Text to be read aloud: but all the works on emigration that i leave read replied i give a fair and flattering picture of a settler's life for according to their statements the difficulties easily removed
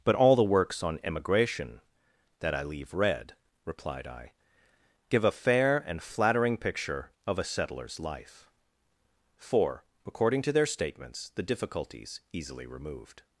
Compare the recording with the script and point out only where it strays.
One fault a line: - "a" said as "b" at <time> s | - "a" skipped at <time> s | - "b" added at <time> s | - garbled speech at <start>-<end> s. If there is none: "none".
none